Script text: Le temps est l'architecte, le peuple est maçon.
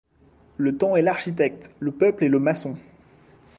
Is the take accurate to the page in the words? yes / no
no